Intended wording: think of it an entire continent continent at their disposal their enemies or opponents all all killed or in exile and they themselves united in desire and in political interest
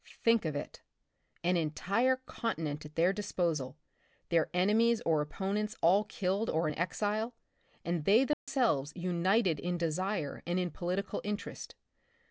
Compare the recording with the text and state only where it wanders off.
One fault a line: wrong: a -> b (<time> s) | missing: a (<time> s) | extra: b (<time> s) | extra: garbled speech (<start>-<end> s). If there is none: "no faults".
missing: continent (2.9 s)
missing: all (6.0 s)